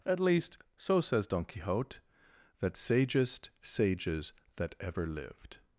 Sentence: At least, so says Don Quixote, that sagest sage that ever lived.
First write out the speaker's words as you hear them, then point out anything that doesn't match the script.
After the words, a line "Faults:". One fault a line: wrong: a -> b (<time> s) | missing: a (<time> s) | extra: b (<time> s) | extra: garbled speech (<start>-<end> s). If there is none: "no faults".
At least, so says Don Quixote, that sagest sages that ever lived.
Faults:
wrong: sage -> sages (3.6 s)